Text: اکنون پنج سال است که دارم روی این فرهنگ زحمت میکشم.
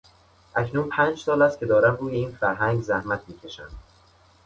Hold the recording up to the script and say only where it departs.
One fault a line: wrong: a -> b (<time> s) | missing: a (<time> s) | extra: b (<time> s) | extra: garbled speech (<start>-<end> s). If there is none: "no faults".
no faults